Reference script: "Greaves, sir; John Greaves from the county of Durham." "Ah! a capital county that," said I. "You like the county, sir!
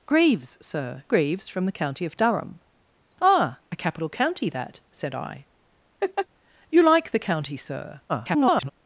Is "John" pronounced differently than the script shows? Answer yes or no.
yes